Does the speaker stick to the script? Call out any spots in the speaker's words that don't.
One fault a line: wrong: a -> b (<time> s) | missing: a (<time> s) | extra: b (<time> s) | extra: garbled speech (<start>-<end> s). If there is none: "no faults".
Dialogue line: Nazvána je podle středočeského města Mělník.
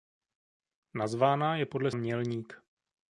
missing: středočeského města (1.9 s)